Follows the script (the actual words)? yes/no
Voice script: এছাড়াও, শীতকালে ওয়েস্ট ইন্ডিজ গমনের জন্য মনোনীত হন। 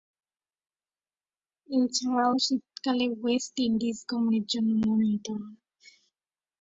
yes